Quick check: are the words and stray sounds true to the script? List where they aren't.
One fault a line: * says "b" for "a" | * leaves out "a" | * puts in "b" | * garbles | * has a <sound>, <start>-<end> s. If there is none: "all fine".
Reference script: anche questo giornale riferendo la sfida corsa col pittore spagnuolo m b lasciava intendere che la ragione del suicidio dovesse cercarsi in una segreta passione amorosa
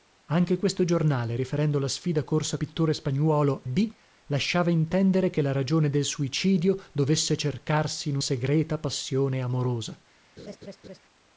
* leaves out "col"
* leaves out "m"
* leaves out "una"
* has a laugh, 10.4-11.0 s